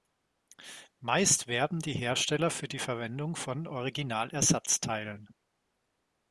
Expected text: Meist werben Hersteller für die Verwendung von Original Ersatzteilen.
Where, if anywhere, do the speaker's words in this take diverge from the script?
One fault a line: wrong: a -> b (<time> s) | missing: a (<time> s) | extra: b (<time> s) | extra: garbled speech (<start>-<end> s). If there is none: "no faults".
extra: die (1.8 s)